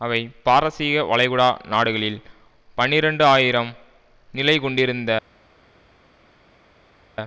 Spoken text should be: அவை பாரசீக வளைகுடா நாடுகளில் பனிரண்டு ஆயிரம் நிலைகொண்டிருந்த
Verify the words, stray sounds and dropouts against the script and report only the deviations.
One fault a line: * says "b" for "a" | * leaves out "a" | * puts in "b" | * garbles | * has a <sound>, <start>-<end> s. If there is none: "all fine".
all fine